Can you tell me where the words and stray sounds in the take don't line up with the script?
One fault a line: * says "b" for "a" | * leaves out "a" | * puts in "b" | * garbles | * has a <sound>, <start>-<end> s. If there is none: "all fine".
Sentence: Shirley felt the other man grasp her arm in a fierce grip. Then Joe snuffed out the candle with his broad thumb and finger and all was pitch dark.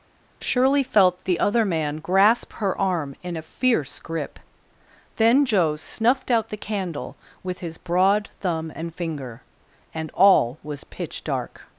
all fine